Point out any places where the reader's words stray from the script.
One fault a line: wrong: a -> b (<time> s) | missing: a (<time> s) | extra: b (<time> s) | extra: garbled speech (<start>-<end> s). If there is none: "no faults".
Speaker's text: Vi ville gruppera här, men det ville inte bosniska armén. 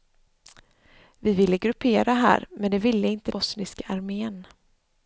no faults